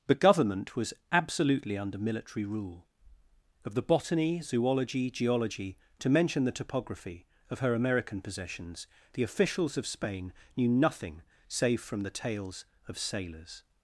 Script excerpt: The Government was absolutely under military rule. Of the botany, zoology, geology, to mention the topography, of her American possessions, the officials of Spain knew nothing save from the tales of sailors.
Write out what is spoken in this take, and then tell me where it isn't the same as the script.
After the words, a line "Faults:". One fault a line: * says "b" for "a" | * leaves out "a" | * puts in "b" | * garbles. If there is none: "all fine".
The Government was absolutely under military rule. Of the botany, zoology, geology, to mention the topography, of her American possessions, the officials of Spain knew nothing save from the tales of sailors.
Faults:
all fine